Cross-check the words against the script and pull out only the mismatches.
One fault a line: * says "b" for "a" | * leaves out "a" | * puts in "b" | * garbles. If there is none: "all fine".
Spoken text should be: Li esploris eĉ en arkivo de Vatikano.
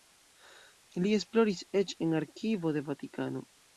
all fine